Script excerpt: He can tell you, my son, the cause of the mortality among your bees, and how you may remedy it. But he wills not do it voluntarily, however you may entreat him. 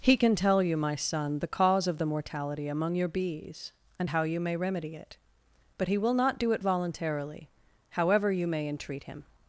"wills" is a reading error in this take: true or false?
true